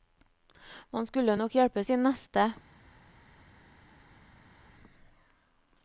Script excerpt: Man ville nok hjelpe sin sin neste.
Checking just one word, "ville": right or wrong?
wrong